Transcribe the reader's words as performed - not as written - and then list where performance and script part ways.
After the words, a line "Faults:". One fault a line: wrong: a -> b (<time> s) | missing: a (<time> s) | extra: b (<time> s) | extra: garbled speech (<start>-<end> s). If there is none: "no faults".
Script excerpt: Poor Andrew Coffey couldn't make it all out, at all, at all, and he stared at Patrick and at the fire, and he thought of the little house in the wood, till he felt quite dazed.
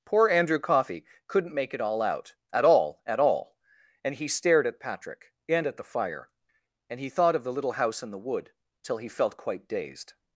Poor Andrew Coffey couldn't make it all out, at all, at all, and he stared at Patrick and at the fire, and he thought of the little house in the wood, till he felt quite dazed.
Faults:
no faults